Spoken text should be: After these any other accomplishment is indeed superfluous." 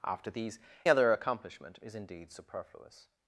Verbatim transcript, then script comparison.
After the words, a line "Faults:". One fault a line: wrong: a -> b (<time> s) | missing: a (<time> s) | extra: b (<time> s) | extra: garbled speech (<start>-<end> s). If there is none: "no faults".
After these other accomplishment is indeed superfluous."
Faults:
missing: any (0.6 s)